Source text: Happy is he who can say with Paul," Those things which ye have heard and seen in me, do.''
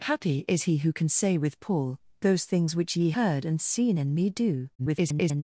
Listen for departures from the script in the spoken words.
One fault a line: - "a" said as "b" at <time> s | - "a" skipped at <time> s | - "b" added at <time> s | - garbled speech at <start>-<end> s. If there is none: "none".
- "have" skipped at 3.1 s
- garbled speech at 4.8-5.4 s